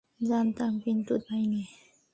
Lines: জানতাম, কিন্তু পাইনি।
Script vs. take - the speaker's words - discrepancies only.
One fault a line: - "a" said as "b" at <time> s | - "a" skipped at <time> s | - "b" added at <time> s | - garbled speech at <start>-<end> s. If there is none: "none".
none